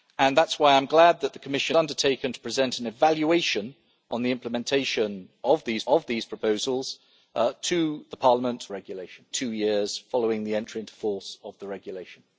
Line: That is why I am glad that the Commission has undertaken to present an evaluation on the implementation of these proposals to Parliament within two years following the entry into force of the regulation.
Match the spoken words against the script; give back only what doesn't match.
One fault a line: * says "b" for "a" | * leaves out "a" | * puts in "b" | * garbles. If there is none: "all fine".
* leaves out "has"
* puts in "of these"
* says "regulation" for "within"